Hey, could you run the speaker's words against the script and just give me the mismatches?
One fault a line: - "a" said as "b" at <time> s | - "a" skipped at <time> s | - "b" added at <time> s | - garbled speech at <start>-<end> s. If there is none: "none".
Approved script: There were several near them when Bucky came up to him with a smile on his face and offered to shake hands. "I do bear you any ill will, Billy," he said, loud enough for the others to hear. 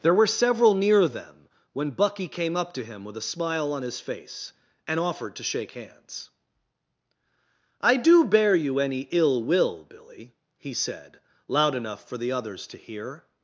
none